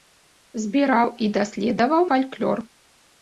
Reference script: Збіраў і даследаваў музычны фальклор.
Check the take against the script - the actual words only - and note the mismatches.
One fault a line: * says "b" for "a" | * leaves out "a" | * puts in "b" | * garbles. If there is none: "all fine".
* leaves out "музычны"